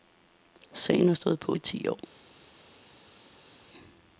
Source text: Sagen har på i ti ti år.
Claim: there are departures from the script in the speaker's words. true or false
true